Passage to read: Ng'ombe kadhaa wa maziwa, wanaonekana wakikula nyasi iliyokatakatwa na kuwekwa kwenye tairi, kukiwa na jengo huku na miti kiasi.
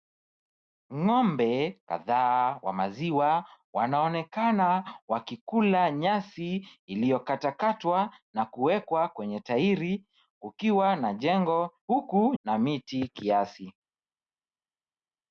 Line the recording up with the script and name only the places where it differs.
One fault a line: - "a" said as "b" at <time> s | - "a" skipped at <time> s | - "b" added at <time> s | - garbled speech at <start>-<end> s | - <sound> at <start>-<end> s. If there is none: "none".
none